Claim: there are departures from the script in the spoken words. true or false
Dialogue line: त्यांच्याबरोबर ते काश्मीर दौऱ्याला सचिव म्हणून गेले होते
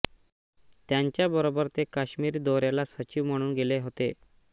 false